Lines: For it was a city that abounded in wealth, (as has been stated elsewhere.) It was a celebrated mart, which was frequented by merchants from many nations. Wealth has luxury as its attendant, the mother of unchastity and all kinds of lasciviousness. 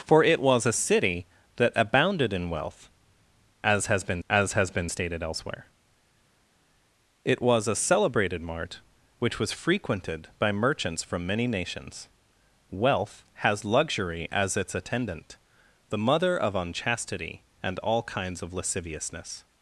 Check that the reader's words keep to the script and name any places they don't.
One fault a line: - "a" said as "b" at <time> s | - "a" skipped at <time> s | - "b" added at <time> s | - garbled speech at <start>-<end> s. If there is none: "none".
- "as has been" added at 4.3 s